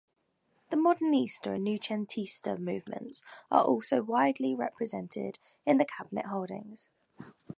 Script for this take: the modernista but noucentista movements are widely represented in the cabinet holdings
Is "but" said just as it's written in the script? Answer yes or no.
no